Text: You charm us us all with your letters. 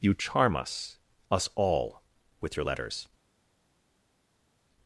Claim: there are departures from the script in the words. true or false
false